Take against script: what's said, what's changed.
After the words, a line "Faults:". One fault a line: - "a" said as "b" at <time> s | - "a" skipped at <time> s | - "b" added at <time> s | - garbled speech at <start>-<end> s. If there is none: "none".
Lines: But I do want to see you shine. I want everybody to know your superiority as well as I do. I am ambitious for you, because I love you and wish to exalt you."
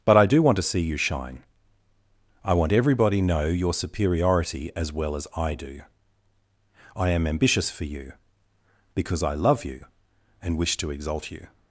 But I do want to see you shine. I want everybody know your superiority as well as I do. I am ambitious for you, because I love you and wish to exalt you."
Faults:
- "to" skipped at 3.2 s